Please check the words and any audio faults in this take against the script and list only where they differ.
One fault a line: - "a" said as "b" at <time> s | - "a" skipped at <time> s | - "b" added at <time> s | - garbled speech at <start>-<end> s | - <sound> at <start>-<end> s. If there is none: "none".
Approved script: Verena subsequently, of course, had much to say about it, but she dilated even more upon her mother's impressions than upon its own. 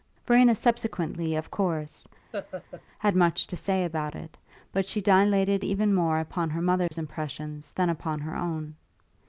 - laugh at 2.3-2.8 s
- dropout at 6.9-6.9 s
- "its" said as "her" at 8.2 s